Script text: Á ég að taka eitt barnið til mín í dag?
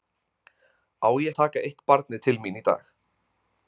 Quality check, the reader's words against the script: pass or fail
pass